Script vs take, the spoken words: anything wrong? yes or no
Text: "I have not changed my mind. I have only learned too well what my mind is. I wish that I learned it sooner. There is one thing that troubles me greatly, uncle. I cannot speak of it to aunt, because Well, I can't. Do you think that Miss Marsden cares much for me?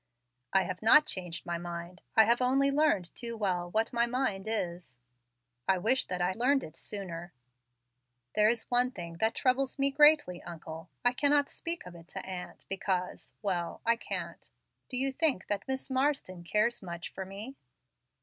no